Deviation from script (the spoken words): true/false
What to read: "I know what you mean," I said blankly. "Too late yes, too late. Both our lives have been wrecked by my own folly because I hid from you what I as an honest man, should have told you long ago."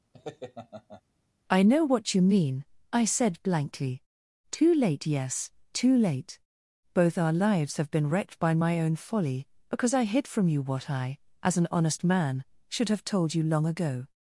false